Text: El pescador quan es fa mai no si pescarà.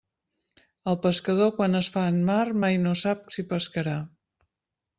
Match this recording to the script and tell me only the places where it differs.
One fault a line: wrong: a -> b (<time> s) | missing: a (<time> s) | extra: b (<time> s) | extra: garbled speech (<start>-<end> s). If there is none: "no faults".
extra: en mar (2.1 s)
extra: sap (3.0 s)